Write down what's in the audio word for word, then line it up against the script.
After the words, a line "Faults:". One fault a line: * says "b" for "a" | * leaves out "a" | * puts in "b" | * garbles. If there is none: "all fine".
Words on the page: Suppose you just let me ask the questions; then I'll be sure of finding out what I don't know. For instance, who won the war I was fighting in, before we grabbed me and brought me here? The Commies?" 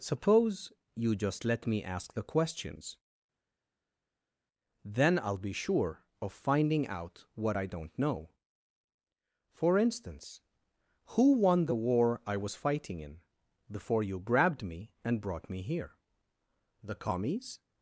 Suppose you just let me ask the questions; then I'll be sure of finding out what I don't know. For instance, who won the war I was fighting in, before you grabbed me and brought me here? The Commies?"
Faults:
* says "you" for "we"